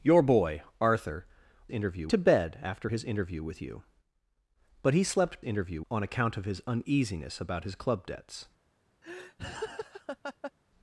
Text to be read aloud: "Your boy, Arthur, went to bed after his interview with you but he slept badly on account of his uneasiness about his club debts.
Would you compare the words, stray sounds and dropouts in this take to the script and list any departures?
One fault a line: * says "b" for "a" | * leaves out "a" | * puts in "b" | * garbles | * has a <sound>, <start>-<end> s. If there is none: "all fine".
* says "interview" for "went"
* says "interview" for "badly"
* has a laugh, 9.0-10.5 s